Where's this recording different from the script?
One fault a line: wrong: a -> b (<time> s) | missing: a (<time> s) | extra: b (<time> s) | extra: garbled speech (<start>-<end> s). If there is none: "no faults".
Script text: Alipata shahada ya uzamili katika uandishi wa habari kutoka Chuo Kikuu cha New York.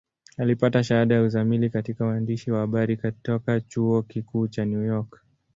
no faults